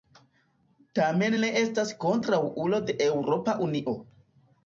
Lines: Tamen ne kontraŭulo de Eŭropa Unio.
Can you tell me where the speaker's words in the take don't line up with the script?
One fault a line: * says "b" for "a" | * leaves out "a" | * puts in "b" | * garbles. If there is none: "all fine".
* puts in "estas"